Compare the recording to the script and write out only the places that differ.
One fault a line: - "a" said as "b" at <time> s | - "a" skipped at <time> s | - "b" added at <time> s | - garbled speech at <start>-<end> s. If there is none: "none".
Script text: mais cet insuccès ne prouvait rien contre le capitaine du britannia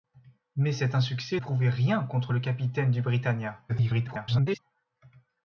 - "ne" skipped at 1.4 s
- garbled speech at 3.7-4.6 s